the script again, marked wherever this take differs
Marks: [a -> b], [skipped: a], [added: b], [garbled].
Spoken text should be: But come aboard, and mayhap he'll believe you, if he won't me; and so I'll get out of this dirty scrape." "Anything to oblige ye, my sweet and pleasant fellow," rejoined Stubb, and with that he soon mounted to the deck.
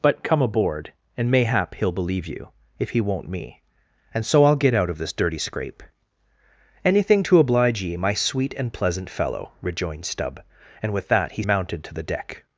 But come aboard, and mayhap he'll believe you, if he won't me; and so I'll get out of this dirty scrape." "Anything to oblige ye, my sweet and pleasant fellow," rejoined Stubb, and with that he [skipped: soon] mounted to the deck.